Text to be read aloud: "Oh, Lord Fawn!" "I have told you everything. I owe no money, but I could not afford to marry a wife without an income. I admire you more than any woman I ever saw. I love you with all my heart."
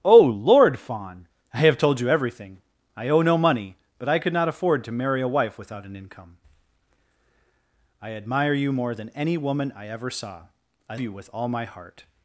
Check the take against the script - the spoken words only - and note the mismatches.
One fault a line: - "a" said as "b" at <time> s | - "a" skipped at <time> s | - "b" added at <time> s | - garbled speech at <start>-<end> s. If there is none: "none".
- "love" skipped at 11.0 s